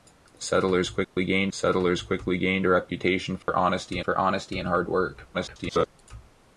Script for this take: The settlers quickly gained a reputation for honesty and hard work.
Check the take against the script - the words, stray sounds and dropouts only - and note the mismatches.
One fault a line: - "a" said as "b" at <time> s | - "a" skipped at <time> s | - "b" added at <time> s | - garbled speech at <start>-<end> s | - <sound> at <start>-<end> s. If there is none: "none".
- dropout at 1.0-1.2 s
- "settlers quickly gained" added at 1.5 s
- dropout at 3.4-3.5 s
- "for honesty" added at 4.0 s
- garbled speech at 5.3-5.9 s